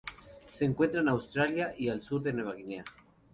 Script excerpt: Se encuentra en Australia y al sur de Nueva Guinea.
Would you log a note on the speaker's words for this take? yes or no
no